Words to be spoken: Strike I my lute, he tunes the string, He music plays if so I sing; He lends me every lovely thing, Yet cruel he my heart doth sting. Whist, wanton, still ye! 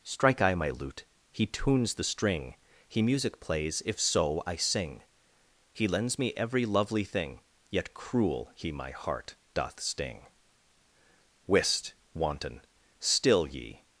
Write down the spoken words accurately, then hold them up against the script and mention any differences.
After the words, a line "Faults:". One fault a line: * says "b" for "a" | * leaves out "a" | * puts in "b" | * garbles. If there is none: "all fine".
Strike I my lute, he tunes the string, He music plays if so I sing; He lends me every lovely thing, Yet cruel he my heart doth sting. Whist, wanton, still ye!
Faults:
all fine